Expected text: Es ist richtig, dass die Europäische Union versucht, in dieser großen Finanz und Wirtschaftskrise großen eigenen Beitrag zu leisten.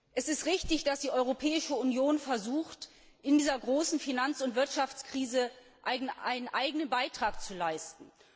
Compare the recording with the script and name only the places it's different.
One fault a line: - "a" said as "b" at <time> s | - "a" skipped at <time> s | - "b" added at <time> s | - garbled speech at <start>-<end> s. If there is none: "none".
- "großen" said as "einen" at 5.8 s